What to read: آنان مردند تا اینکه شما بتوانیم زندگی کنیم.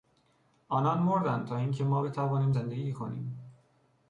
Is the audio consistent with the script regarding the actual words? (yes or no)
no